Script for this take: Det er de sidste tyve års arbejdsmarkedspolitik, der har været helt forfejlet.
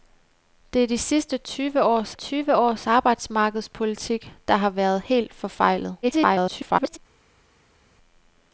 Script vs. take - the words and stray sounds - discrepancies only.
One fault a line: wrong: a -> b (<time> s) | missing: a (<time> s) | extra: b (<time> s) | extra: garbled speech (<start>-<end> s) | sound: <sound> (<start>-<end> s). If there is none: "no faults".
extra: tyve års (2.1 s)
extra: garbled speech (6.0-7.0 s)